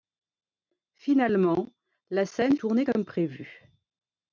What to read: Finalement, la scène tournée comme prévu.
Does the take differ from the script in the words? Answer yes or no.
no